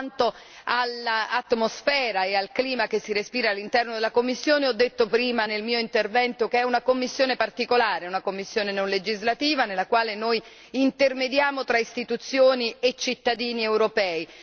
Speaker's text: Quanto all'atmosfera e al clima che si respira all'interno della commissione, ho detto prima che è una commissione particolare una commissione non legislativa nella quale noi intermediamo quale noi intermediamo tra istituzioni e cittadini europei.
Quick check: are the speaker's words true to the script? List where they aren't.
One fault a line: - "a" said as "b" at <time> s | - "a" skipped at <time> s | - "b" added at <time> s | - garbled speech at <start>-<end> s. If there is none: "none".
- "nel mio intervento" added at 5.4 s
- "quale noi intermediamo" skipped at 11.6 s